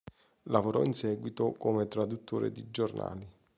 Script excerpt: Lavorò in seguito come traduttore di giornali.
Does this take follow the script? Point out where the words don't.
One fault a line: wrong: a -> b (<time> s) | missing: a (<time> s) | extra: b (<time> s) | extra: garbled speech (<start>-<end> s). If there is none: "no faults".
no faults